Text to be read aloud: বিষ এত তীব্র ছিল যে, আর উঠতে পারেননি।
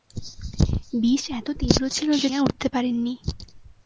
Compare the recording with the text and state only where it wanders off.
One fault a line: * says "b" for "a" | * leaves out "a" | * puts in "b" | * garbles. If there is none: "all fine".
all fine